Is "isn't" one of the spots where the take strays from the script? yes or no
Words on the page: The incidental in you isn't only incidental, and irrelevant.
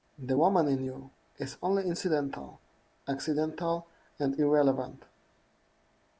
yes